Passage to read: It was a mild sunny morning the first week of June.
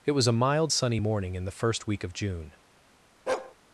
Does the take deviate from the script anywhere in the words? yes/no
yes